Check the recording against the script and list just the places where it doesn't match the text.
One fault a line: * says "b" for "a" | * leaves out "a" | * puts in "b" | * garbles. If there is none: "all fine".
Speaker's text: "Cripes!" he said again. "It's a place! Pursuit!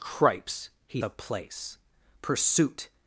* leaves out "said again It's"